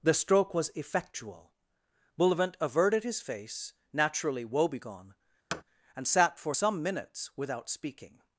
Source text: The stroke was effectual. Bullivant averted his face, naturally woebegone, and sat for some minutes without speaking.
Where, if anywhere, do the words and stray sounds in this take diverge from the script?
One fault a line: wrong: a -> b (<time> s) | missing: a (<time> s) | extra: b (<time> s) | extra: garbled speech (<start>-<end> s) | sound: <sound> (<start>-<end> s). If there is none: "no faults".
sound: thud (5.5-5.6 s)